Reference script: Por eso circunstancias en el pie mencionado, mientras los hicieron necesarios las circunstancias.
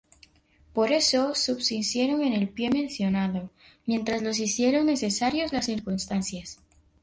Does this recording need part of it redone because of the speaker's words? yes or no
yes